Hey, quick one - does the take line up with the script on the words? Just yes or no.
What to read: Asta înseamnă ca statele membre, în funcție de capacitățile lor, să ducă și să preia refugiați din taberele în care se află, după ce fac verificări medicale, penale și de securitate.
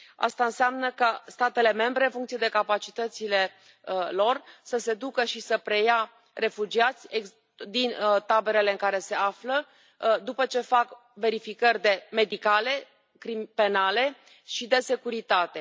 no